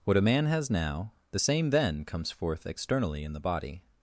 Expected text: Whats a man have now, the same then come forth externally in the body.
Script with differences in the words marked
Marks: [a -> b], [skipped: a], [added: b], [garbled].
[Whats -> What] a man [have -> has] now, the same then [come -> comes] forth externally in the body.